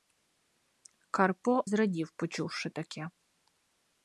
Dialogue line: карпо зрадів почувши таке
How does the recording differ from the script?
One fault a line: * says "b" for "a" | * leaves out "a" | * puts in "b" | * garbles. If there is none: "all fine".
all fine